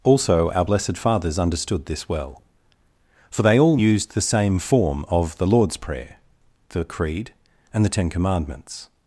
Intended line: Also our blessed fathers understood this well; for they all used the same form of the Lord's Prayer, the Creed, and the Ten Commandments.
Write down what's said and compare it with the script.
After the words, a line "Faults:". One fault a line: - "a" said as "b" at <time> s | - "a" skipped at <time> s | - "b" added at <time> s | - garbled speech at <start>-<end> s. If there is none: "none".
Also our blessed fathers understood this well; for they all used the same form of the Lord's Prayer, the Creed, and the Ten Commandments.
Faults:
none